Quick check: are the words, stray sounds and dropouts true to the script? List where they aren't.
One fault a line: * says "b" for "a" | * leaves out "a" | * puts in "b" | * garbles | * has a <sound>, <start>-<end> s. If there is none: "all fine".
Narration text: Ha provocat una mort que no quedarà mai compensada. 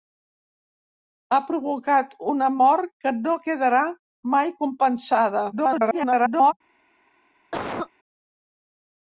* garbles
* has a cough, 7.5-7.9 s